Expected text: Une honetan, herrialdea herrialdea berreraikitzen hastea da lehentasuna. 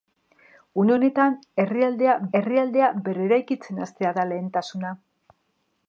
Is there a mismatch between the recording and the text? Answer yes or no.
no